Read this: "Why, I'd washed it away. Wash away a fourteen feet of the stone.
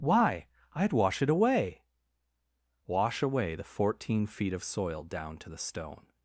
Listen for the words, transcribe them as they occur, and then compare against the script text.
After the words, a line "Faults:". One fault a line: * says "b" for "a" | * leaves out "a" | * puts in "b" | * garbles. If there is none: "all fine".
"Why, I'd wash it away. Wash away the fourteen feet of soil down to the stone.
Faults:
* says "wash" for "washed"
* says "the" for "a"
* puts in "soil down to"